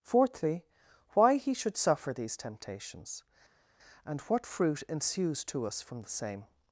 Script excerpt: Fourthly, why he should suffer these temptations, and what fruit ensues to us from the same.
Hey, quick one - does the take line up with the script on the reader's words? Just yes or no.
yes